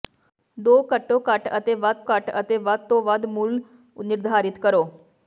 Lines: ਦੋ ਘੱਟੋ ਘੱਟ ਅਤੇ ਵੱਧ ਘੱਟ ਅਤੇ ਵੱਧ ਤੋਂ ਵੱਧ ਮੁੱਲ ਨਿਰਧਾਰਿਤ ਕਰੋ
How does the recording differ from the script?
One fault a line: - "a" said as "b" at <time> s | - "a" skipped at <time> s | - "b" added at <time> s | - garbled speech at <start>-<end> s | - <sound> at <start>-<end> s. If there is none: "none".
none